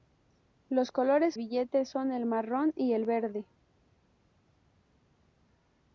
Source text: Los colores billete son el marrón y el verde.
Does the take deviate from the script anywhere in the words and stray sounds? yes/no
no